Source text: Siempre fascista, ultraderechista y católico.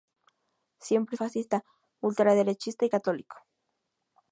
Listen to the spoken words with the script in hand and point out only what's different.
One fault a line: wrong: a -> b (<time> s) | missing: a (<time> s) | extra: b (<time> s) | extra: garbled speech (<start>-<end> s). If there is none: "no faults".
no faults